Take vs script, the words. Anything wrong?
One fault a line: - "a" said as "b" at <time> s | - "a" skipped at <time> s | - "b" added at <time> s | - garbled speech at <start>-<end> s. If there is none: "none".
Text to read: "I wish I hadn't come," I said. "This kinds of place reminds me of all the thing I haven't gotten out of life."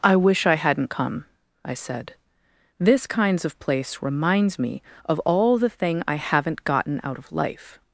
none